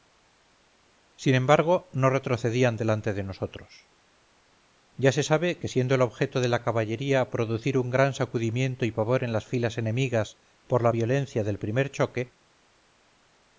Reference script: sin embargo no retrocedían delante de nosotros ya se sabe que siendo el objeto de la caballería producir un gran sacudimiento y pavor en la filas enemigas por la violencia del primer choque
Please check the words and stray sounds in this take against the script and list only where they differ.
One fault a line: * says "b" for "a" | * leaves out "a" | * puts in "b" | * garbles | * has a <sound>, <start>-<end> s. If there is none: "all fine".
* says "las" for "la"